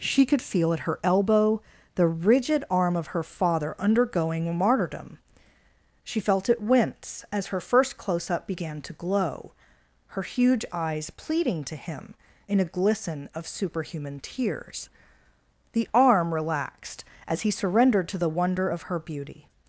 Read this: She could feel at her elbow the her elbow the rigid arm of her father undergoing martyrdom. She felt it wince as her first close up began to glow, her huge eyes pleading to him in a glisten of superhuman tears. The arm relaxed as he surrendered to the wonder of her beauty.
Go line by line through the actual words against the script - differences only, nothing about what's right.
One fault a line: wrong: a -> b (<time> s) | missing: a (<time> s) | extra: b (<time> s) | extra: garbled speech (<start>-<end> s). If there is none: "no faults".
missing: her elbow the (2.1 s)